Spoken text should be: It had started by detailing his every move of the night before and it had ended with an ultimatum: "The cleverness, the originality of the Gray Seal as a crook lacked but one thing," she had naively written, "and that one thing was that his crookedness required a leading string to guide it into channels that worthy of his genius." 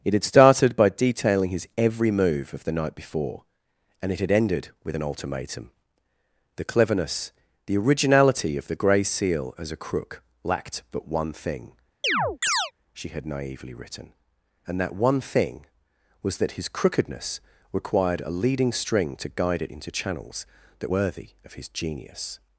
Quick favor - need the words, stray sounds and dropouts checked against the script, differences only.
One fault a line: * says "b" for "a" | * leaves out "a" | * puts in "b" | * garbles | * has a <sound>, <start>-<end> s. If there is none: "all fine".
* has a chirp, 12.0-12.7 s